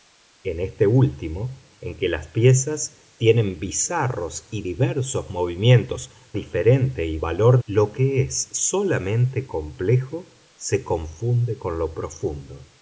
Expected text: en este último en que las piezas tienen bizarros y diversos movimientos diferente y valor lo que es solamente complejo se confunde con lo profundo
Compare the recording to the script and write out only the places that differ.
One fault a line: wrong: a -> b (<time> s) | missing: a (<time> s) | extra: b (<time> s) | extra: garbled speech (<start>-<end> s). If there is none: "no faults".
no faults